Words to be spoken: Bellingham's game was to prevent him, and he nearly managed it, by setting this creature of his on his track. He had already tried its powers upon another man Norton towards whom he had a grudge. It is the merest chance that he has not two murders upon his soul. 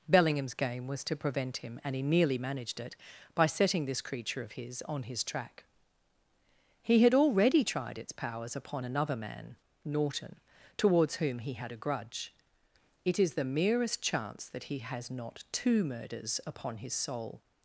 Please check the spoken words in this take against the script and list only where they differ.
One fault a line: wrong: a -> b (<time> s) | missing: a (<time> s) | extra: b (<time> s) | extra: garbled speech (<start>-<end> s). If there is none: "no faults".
no faults